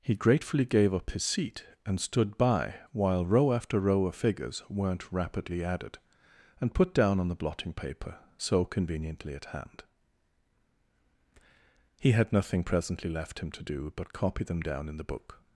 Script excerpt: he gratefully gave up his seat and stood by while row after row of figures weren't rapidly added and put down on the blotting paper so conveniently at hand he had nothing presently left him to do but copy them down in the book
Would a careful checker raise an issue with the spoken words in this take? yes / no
no